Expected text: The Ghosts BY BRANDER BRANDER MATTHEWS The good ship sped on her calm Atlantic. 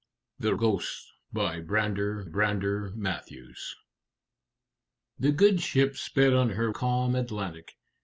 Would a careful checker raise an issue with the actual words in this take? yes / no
no